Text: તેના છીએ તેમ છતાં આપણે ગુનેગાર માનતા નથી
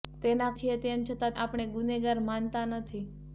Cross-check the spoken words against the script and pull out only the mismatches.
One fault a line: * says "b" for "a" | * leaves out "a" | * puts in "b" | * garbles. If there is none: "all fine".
all fine